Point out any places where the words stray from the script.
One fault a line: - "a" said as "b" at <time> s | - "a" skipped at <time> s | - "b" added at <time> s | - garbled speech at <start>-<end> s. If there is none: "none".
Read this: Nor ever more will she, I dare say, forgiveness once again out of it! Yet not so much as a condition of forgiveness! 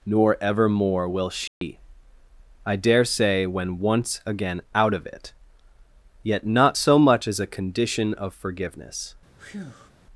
- "forgiveness" said as "when" at 3.5 s